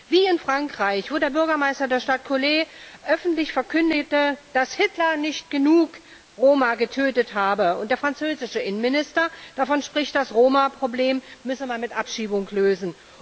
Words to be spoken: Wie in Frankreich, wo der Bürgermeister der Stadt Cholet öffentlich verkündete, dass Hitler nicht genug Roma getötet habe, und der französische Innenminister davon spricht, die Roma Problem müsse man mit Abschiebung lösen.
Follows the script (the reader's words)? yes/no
no